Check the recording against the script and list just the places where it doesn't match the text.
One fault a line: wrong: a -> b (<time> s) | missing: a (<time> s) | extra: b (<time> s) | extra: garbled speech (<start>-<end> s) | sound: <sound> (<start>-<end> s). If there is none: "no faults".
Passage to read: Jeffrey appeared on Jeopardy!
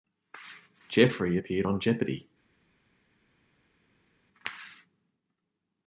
no faults